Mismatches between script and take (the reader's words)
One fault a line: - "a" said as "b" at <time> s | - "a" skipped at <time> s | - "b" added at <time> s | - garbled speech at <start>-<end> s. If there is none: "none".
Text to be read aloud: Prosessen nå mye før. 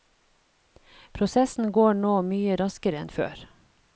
- "går" added at 1.7 s
- "raskere enn" added at 2.6 s